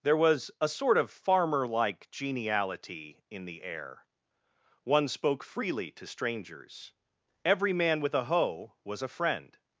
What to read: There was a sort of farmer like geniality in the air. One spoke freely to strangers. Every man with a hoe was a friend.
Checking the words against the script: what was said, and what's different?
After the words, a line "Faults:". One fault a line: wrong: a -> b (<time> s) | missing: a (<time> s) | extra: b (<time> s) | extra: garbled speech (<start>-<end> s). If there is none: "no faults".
There was a sort of farmer like geniality in the air. One spoke freely to strangers. Every man with a hoe was a friend.
Faults:
no faults